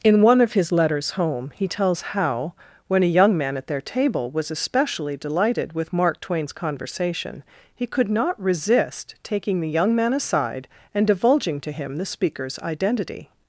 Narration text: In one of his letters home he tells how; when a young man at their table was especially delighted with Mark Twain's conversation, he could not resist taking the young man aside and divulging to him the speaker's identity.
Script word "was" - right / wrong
right